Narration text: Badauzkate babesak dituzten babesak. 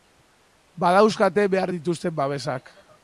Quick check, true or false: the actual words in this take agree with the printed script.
false